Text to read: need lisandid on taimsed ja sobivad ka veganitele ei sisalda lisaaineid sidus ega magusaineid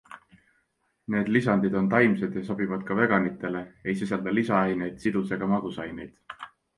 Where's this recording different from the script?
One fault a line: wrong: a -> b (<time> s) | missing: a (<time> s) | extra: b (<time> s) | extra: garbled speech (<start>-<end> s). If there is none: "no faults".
no faults